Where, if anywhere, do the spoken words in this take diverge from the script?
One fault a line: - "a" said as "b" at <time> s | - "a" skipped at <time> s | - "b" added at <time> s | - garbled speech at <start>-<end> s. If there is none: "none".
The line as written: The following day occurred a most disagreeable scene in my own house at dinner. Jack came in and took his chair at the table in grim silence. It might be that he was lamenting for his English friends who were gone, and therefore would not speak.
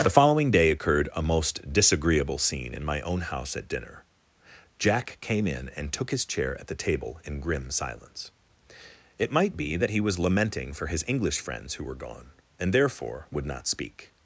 none